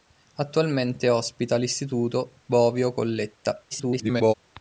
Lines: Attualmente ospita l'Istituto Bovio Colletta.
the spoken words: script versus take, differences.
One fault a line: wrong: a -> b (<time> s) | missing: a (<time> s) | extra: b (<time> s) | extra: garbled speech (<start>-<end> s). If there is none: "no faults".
extra: garbled speech (3.7-4.3 s)